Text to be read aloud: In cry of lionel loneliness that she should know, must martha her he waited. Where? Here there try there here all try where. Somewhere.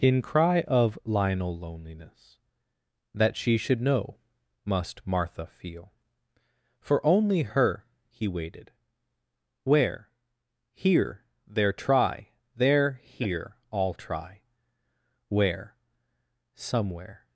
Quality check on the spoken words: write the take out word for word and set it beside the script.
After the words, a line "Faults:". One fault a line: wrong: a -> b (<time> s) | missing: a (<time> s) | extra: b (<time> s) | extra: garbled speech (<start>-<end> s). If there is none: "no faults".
In cry of lionel loneliness that she should know, must martha feel. For only her he waited. Where? Here there try there here all try where. Somewhere.
Faults:
extra: feel For only (5.5 s)